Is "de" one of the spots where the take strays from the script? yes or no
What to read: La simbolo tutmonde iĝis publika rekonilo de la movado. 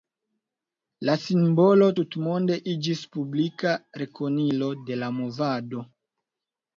no